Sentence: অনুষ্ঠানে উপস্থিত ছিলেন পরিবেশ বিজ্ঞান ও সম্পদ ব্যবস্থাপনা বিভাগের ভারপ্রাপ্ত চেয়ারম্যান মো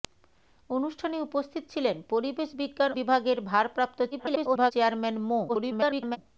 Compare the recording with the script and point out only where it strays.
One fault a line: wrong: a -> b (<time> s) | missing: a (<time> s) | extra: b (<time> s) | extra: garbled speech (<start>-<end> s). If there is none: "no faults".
missing: ও সম্পদ ব্যবস্থাপনা (2.9 s)
extra: garbled speech (4.1-4.7 s)
extra: garbled speech (5.5-6.2 s)